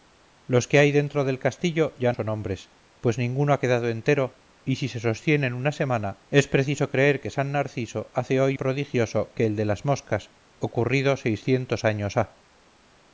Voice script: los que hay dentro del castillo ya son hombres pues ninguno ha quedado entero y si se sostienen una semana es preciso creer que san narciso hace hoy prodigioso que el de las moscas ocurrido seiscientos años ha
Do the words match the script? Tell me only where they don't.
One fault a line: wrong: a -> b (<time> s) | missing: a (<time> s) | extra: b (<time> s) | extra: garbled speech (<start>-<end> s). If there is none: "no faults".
no faults